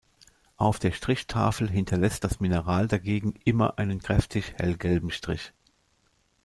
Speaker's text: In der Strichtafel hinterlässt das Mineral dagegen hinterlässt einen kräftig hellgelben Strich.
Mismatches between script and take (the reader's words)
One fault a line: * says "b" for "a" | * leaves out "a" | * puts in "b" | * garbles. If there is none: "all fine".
* says "Auf" for "In"
* says "immer" for "hinterlässt"